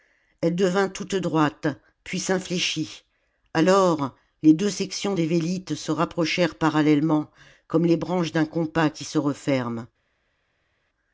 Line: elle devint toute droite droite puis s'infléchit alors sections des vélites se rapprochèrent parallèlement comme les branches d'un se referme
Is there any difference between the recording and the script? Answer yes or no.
yes